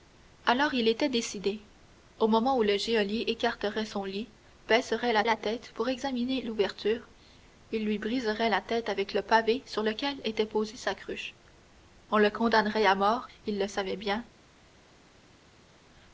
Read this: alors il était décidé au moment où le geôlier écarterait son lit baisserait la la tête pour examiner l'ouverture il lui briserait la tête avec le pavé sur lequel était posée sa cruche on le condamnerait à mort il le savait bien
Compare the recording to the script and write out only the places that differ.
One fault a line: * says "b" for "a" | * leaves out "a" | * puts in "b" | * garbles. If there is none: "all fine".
all fine